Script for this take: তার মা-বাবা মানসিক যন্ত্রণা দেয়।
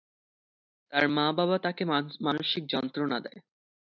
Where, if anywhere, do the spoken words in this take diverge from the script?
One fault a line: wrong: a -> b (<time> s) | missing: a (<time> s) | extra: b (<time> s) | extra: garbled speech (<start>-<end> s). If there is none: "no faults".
extra: তাকে (1.6 s)